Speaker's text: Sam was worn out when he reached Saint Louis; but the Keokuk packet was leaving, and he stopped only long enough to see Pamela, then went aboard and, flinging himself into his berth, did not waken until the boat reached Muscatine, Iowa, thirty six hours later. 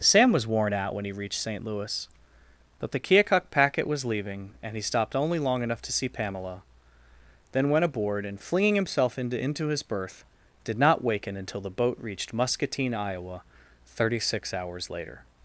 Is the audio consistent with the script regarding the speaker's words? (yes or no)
no